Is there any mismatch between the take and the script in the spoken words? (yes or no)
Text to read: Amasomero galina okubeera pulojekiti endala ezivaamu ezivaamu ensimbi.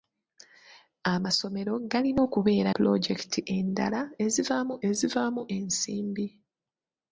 no